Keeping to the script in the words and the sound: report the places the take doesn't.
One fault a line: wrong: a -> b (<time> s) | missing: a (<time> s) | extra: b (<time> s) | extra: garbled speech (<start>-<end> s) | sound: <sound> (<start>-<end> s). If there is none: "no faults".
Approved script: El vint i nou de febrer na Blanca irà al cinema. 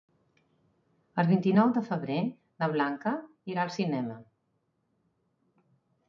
no faults